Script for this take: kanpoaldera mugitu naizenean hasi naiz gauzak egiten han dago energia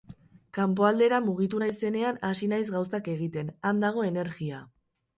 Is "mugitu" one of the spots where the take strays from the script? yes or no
no